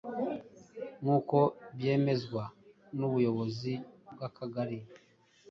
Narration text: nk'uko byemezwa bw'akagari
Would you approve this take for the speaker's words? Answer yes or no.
no